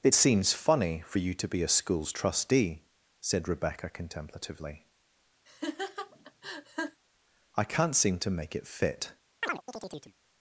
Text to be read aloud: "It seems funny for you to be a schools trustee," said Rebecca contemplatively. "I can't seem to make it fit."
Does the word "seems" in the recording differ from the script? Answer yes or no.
no